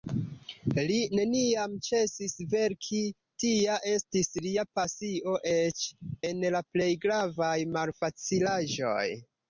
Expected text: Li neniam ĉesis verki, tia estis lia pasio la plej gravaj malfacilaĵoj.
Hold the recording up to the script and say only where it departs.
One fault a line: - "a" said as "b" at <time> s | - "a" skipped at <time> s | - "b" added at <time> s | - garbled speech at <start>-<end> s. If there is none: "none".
- "eĉ en" added at 5.5 s